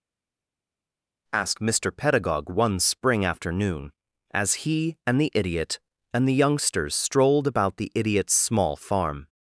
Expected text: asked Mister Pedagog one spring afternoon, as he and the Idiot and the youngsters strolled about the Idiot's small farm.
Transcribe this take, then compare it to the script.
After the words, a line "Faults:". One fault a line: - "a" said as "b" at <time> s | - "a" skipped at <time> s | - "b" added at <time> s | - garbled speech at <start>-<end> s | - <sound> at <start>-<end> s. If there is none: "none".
asked Mister Pedagog one spring afternoon, as he and the Idiot and the youngsters strolled about the Idiot's small farm.
Faults:
none